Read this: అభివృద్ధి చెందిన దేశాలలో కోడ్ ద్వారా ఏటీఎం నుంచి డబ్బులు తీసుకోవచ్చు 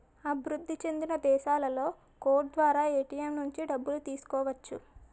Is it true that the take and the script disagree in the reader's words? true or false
false